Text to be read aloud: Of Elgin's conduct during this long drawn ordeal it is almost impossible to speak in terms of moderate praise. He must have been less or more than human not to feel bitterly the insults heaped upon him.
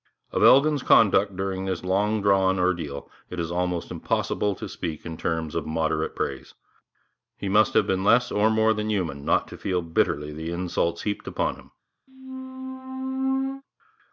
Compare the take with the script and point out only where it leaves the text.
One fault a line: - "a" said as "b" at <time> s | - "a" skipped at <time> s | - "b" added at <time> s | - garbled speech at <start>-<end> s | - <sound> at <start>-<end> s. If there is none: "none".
- squeak at 12.1-13.6 s